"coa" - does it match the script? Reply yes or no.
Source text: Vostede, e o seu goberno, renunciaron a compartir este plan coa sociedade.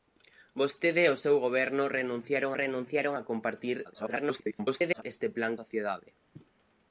no